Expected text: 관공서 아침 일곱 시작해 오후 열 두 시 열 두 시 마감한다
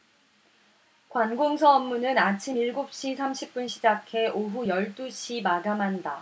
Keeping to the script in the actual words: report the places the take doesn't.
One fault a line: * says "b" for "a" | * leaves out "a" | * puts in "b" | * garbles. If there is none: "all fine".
* puts in "업무는"
* says "시 삼십 분 시작해 오후" for "시작해 오후 열 두 시"